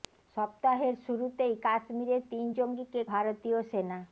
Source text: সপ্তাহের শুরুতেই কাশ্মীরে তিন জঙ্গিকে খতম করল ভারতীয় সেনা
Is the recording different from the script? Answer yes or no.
yes